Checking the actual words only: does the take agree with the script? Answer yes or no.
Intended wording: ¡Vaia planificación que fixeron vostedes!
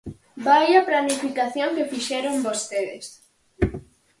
yes